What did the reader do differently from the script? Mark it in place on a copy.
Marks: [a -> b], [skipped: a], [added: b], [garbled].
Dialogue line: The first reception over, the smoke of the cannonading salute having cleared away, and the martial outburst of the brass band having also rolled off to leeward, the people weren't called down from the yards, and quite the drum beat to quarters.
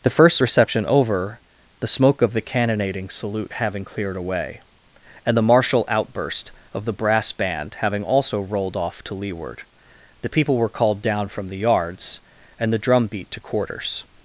The first reception over, the smoke of the cannonading salute having cleared away, and the martial outburst of the brass band having also rolled off to leeward, the people [weren't -> were] called down from the yards, and [skipped: quite] the drum beat to quarters.